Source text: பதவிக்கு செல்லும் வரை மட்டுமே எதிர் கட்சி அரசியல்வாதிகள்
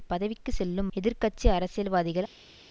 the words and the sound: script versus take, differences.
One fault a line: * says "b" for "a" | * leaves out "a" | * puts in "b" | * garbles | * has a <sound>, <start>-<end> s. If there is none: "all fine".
* leaves out "வரை மட்டுமே"